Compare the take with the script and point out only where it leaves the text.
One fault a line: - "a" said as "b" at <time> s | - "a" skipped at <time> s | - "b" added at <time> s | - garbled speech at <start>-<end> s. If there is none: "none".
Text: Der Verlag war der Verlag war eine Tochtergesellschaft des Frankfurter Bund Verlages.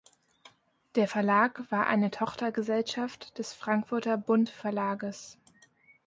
- "der Verlag war" skipped at 1.9 s